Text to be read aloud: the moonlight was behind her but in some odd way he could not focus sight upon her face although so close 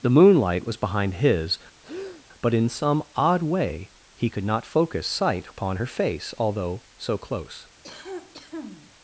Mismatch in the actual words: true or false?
true